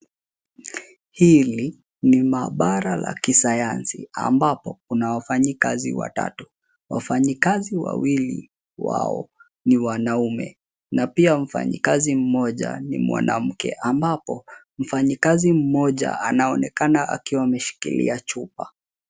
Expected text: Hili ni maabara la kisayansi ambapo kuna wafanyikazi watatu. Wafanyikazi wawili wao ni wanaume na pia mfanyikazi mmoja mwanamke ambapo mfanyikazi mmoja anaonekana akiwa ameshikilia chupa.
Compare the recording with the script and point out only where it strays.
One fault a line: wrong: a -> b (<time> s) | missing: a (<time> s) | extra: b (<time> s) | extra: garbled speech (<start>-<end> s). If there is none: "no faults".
extra: ni (12.8 s)